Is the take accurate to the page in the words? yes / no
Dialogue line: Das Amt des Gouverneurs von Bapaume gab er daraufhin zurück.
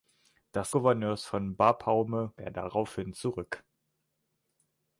no